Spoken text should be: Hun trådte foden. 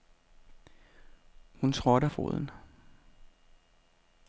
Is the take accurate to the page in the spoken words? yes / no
yes